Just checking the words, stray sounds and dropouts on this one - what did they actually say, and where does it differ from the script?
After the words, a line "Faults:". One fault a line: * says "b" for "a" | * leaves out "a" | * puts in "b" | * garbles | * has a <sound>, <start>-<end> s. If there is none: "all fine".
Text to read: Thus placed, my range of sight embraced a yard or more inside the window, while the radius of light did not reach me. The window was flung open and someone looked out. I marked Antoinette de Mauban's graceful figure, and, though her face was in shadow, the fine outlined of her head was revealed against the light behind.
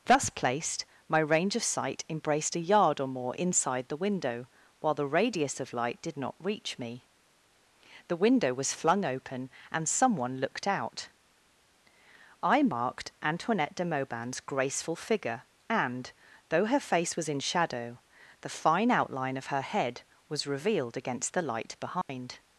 Thus placed, my range of sight embraced a yard or more inside the window, while the radius of light did not reach me. The window was flung open and someone looked out. I marked Antoinette de Mauban's graceful figure, and, though her face was in shadow, the fine outline of her head was revealed against the light behind.
Faults:
* says "outline" for "outlined"
* has a dropout, 22.0-22.1 s